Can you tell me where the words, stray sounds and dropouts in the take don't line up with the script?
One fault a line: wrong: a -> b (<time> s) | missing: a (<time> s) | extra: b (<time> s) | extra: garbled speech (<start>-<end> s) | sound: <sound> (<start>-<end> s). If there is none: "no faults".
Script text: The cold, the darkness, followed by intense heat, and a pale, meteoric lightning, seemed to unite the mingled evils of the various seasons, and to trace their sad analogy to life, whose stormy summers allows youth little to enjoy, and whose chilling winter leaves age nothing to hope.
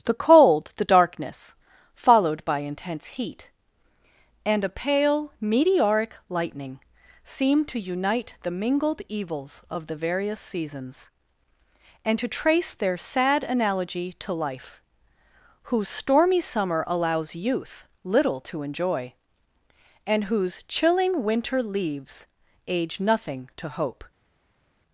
wrong: summers -> summer (16.4 s)